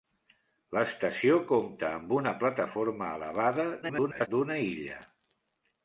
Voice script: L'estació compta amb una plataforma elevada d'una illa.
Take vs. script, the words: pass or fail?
fail